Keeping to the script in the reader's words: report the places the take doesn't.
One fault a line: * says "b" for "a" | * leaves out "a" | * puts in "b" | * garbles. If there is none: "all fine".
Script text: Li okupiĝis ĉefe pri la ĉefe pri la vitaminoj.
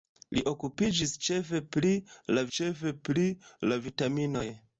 all fine